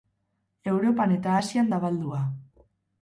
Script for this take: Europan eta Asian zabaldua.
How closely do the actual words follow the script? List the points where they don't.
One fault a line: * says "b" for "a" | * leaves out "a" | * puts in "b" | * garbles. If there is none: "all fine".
all fine